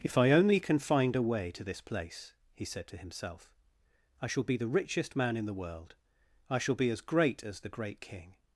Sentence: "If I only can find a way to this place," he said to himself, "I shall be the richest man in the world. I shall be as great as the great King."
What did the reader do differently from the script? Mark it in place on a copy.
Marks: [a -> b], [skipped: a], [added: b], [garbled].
"If I only can find a way to this place," he said to himself, "I shall be the richest man in the world. I shall be as great as the great King."